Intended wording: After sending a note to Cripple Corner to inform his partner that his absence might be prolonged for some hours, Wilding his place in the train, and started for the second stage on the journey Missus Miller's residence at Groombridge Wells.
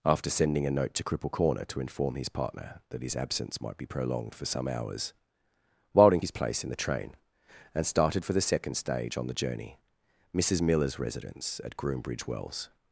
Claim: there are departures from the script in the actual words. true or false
false